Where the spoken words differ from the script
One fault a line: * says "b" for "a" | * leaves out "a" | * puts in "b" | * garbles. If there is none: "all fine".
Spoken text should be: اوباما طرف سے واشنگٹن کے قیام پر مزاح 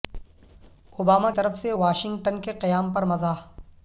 all fine